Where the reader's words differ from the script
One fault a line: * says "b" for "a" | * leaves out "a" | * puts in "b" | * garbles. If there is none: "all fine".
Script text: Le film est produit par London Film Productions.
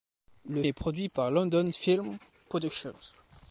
* leaves out "film"